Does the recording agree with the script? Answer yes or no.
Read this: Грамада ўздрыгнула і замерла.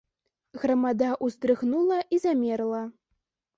yes